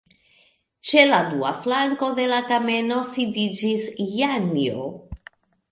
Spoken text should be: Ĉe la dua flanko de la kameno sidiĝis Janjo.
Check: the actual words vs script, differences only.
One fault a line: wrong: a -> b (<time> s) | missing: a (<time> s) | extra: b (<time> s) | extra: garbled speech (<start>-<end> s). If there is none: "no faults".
no faults